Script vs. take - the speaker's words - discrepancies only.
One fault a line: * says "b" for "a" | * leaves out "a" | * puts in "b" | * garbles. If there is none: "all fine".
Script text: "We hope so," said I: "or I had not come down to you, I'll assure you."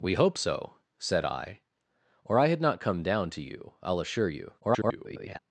* garbles